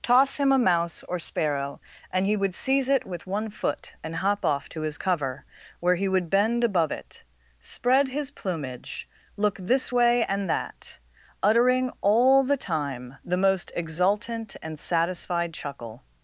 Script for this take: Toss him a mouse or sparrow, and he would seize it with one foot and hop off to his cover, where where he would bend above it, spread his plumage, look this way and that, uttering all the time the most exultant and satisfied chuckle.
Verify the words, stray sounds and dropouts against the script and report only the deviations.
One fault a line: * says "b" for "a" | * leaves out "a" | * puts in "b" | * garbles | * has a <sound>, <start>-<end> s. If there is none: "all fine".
* leaves out "where"